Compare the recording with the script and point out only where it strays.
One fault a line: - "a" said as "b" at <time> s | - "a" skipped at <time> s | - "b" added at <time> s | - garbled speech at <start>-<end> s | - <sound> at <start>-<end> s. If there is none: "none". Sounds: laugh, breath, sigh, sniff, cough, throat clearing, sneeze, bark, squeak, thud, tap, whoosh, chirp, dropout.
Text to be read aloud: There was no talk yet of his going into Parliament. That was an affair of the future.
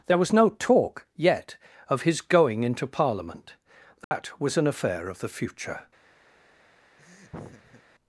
- dropout at 4.0-4.1 s
- laugh at 7.0-7.8 s